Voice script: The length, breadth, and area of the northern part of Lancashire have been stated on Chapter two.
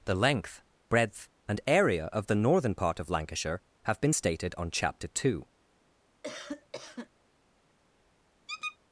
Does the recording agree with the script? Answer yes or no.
yes